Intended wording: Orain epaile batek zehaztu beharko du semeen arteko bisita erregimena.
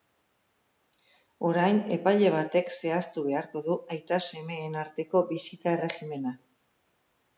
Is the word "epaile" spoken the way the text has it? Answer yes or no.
yes